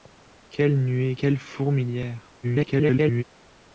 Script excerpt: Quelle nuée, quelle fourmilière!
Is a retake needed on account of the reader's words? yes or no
yes